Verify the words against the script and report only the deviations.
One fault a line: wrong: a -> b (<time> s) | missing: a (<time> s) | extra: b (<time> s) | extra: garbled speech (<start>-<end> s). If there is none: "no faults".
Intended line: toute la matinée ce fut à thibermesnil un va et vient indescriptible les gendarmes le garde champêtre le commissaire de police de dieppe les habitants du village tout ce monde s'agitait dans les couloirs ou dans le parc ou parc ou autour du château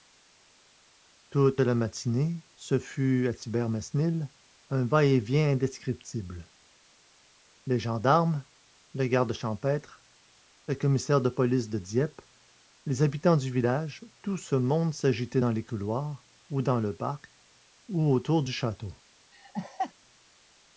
missing: parc ou (18.1 s)